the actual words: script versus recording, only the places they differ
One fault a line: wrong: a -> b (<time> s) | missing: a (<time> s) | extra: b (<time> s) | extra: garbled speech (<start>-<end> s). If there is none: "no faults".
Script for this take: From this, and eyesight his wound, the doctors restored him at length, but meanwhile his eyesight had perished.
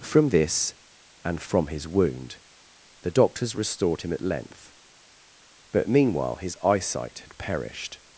wrong: eyesight -> from (1.4 s)